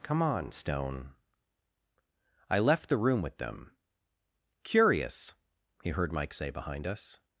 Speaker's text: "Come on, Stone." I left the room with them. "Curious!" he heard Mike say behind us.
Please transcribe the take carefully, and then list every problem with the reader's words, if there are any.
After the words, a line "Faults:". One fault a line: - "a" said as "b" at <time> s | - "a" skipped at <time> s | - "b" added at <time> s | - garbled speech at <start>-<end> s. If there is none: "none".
"Come on, Stone." I left the room with them. "Curious!" he heard Mike say behind us.
Faults:
none